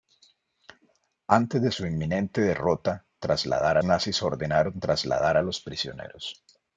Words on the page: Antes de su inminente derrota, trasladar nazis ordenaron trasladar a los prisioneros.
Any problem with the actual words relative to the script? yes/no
no